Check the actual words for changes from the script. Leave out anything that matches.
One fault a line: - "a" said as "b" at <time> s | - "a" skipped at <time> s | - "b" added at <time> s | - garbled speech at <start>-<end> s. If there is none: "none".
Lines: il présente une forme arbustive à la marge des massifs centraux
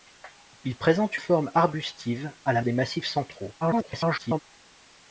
- "une" skipped at 1.2 s
- "marge" skipped at 2.6 s
- garbled speech at 3.6-4.4 s